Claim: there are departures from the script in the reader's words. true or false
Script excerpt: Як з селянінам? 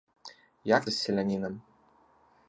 false